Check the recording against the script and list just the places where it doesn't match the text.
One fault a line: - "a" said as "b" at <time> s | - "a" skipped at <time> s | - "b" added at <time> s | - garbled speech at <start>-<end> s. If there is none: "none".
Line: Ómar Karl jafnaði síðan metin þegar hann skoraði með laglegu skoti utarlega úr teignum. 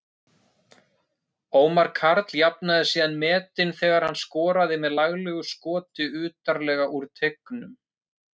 none